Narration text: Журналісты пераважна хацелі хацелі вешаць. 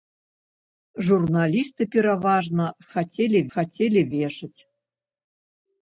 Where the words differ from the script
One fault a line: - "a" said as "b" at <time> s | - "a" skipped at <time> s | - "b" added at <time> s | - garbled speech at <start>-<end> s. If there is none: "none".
none